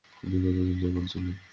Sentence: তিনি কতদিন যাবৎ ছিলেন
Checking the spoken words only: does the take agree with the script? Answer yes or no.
yes